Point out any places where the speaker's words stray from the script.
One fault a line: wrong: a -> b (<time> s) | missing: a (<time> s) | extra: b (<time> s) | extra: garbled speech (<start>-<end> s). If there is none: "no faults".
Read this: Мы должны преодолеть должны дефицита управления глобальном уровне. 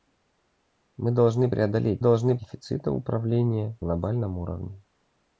no faults